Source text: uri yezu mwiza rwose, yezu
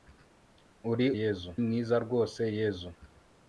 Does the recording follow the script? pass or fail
pass